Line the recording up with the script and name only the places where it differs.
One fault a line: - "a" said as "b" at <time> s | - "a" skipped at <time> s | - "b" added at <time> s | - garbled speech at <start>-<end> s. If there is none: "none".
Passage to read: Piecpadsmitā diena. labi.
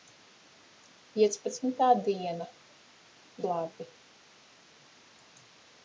none